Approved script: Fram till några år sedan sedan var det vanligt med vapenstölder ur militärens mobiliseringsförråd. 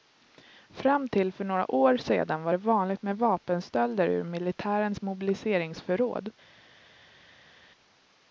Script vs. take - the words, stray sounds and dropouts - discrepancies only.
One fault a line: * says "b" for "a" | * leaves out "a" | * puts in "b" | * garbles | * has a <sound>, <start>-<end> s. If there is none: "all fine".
* puts in "för"
* leaves out "sedan"